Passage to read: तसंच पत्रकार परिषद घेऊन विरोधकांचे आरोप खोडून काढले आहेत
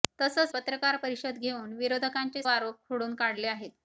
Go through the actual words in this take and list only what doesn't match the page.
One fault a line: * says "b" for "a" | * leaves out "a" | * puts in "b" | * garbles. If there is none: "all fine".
all fine